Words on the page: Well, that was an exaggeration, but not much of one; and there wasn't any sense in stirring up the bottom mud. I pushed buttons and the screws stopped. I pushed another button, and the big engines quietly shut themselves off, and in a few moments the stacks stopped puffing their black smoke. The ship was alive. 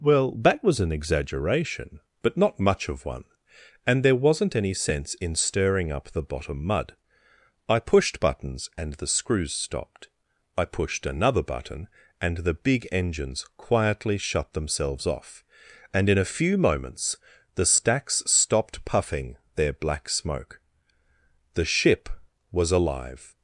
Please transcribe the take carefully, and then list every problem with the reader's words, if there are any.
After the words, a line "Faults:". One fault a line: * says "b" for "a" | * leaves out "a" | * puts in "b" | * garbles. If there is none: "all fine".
Well, that was an exaggeration, but not much of one; and there wasn't any sense in stirring up the bottom mud. I pushed buttons and the screws stopped. I pushed another button, and the big engines quietly shut themselves off, and in a few moments the stacks stopped puffing their black smoke. The ship was alive.
Faults:
all fine